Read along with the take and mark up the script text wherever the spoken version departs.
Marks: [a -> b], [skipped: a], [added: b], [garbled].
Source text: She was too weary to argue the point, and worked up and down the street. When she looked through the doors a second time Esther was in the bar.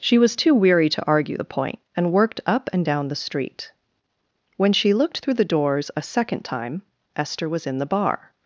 She was too weary to argue the point, and worked up and down the street. When she looked through the doors a second time Esther was in the bar.